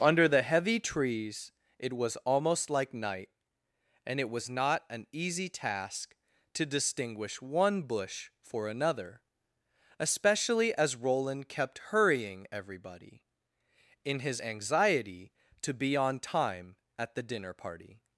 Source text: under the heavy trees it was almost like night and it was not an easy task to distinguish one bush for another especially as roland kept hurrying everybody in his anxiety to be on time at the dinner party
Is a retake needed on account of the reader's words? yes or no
no